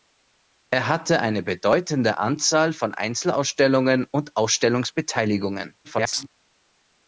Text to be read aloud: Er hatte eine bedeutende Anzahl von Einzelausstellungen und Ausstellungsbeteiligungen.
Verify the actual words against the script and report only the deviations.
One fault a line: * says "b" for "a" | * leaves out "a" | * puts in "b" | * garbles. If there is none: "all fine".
* garbles